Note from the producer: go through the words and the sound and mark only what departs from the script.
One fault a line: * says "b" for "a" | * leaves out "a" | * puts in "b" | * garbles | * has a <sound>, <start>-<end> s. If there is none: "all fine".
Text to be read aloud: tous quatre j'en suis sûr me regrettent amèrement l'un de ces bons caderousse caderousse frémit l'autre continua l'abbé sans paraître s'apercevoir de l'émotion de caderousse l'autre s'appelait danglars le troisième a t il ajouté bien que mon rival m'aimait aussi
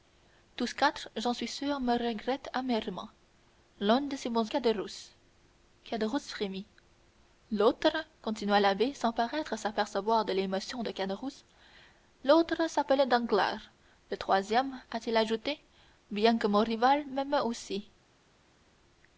all fine